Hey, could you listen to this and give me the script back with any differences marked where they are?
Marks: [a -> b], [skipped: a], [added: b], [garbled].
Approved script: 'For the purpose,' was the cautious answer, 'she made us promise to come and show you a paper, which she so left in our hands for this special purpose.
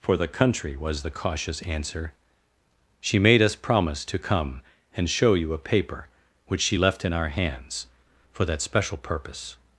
'For the [purpose,' -> country] was the cautious answer, 'she made us promise to come and show you a paper, which she [skipped: so] left in our hands for [this -> that] special purpose.